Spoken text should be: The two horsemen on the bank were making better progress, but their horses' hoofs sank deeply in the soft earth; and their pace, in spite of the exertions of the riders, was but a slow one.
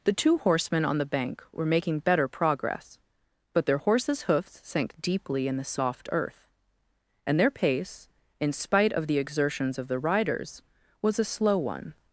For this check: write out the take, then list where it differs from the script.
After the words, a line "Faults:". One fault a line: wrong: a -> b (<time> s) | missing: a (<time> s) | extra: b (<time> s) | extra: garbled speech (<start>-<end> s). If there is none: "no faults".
The two horsemen on the bank were making better progress, but their horses' hoofs sank deeply in the soft earth; and their pace, in spite of the exertions of the riders, was a slow one.
Faults:
missing: but (11.2 s)